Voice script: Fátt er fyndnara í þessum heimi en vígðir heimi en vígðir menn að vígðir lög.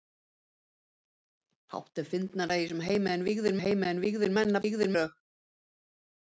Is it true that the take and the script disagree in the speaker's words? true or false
false